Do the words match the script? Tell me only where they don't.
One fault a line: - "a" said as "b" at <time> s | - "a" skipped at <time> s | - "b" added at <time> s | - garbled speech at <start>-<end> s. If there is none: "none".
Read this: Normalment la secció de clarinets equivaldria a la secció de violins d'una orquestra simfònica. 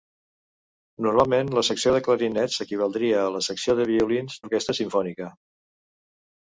- "d'una" skipped at 4.4 s